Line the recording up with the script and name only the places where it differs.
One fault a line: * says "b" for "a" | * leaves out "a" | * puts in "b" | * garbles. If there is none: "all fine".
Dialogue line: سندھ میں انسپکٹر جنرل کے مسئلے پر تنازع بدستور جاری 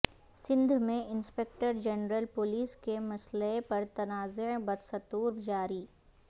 * puts in "پولیس"